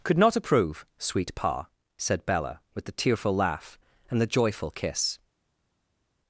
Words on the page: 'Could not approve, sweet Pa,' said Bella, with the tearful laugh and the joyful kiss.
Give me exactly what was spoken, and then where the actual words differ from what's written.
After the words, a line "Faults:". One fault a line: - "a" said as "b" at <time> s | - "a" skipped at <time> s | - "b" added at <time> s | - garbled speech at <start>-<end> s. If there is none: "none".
'Could not approve, sweet Pa,' said Bella, with the tearful laugh and the joyful kiss.
Faults:
none